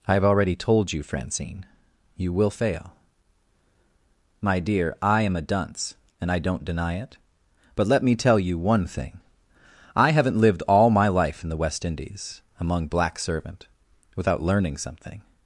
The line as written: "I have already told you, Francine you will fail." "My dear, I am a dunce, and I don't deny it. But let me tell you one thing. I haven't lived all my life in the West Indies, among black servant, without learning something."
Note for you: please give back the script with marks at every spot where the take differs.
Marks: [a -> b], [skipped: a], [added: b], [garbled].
"I have already told you, Francine you will fail." "My dear, I am a dunce, and I don't deny it. But let me tell you one thing. I haven't lived all my life in the West Indies, among black servant, without learning something."